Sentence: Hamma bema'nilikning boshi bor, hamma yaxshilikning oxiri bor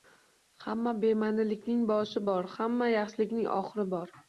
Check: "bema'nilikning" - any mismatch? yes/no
no